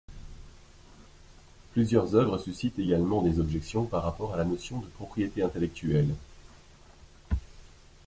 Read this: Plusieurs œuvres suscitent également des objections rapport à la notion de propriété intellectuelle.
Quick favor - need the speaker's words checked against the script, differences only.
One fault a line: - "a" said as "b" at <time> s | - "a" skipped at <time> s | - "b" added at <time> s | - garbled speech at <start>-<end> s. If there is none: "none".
- "par" added at 3.9 s